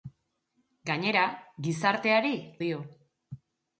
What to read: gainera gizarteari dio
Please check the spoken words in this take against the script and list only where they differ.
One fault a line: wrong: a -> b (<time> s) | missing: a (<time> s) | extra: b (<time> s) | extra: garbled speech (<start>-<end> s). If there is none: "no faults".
no faults